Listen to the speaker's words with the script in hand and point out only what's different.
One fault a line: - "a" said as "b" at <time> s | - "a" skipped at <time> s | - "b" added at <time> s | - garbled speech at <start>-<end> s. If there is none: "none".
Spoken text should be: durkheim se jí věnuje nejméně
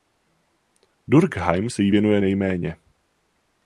none